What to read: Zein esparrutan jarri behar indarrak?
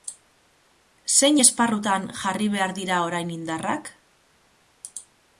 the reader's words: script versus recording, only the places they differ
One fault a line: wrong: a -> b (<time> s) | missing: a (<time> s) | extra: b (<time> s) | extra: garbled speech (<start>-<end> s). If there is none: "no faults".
extra: dira orain (2.8 s)